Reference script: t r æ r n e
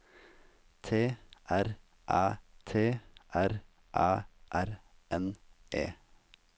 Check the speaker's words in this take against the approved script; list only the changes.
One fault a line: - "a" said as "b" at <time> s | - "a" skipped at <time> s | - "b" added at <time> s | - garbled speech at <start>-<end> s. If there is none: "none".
- "t r æ" added at 2.6 s